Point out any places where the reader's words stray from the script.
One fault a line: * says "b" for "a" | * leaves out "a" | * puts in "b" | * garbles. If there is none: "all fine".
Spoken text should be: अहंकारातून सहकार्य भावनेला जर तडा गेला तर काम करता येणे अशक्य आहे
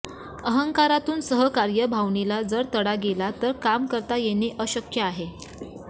all fine